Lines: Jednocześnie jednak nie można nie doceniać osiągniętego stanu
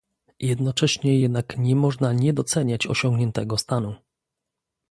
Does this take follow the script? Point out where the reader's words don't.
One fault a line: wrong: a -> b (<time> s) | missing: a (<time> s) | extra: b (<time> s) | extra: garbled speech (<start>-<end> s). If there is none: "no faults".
no faults